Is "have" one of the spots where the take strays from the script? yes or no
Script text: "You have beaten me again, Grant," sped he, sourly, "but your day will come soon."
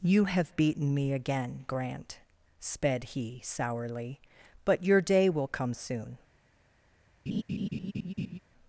no